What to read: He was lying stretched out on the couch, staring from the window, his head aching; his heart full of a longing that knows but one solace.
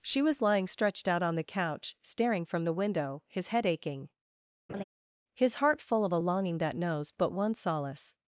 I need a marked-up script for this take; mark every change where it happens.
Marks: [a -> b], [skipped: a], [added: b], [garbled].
[He -> She] was lying stretched out on the couch, staring from the window, his head aching; his heart full of a longing that knows but one solace.